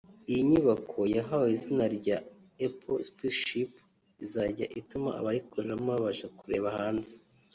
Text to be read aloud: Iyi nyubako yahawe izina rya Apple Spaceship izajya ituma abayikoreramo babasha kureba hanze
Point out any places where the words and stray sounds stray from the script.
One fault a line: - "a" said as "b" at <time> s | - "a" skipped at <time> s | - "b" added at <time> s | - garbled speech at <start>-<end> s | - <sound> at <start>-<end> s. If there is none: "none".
none